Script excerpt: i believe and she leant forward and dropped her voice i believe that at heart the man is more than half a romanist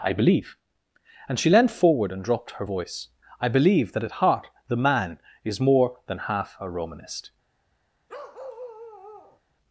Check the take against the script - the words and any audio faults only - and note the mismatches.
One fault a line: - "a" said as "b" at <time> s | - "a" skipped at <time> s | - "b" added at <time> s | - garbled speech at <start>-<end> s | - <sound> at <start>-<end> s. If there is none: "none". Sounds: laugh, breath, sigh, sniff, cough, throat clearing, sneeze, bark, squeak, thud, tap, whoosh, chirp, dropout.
- bark at 8.1-9.4 s